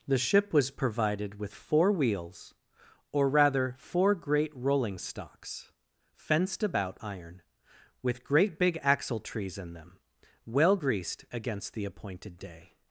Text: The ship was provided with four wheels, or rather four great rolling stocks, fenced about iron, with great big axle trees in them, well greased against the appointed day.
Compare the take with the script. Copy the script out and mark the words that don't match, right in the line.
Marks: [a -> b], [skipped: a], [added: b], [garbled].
The ship was provided with four wheels, or rather four great rolling stocks, fenced about iron, with great big axle trees in them, well greased against the appointed day.